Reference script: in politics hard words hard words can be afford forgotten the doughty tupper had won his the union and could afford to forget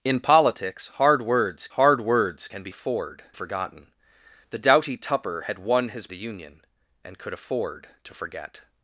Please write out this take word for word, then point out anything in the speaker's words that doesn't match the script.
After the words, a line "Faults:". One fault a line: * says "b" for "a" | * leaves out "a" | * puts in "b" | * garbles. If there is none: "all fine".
in politics hard words hard words can be afford forgotten the doughty tupper had won his the union and could afford to forget
Faults:
all fine